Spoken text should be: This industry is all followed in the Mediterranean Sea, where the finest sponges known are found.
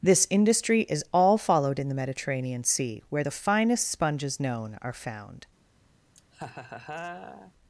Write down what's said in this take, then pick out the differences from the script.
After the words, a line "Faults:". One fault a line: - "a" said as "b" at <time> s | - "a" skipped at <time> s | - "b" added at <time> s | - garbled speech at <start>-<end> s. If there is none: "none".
This industry is all followed in the Mediterranean Sea, where the finest sponges known are found.
Faults:
none